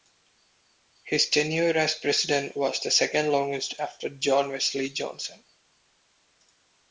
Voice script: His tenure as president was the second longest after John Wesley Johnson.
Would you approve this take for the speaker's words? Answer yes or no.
yes